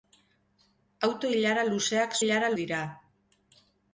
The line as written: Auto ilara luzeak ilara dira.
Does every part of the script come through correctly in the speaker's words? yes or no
yes